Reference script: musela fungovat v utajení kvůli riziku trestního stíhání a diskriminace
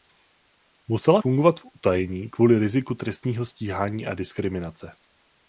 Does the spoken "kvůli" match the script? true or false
true